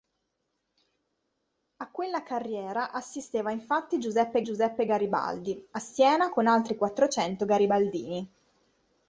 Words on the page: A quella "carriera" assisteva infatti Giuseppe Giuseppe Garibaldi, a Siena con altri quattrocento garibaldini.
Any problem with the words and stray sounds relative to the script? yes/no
no